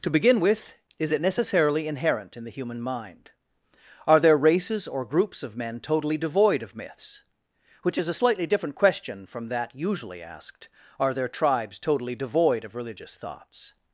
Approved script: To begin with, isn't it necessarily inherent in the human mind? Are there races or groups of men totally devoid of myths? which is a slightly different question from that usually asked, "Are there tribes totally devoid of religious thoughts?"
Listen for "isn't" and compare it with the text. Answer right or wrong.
wrong